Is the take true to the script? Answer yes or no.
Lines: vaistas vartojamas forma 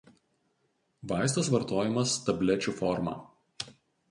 no